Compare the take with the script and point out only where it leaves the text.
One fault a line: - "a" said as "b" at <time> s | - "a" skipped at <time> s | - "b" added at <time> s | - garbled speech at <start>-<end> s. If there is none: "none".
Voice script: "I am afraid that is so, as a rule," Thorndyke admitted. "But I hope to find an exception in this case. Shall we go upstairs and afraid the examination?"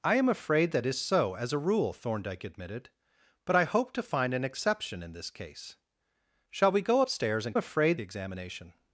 none